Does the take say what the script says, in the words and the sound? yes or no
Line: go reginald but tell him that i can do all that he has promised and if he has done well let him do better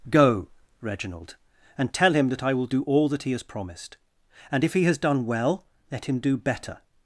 no